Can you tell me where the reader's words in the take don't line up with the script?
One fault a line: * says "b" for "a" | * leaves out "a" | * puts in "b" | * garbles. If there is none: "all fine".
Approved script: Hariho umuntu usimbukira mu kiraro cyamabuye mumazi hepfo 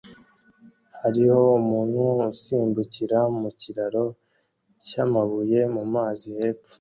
all fine